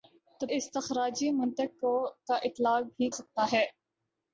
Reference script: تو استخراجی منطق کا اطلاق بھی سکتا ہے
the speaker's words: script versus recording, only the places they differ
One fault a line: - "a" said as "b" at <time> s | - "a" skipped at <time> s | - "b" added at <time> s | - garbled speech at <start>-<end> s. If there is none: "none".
none